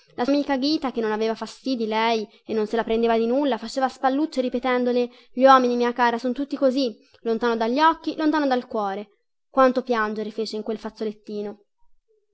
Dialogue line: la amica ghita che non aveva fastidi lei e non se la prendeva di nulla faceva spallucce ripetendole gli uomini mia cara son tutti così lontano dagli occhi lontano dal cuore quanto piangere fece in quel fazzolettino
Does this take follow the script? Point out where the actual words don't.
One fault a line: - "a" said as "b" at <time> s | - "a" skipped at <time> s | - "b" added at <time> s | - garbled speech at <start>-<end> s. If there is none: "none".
none